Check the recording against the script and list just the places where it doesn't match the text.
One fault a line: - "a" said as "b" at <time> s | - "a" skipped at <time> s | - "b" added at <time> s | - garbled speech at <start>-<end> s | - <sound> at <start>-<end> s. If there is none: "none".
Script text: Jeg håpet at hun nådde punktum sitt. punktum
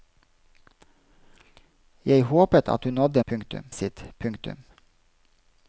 none